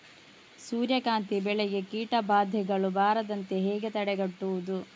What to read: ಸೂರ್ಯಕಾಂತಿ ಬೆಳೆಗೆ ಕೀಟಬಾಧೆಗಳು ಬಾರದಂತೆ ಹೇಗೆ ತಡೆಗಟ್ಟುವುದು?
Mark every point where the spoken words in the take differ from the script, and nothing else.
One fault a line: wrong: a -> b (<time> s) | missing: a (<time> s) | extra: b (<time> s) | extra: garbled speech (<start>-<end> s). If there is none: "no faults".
no faults